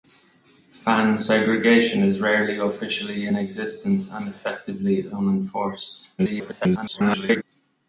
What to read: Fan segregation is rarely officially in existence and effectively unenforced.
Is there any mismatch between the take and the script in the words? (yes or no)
yes